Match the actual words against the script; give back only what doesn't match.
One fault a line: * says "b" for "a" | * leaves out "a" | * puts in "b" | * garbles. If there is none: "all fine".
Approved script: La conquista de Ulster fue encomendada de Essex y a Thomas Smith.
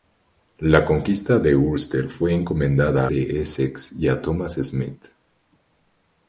all fine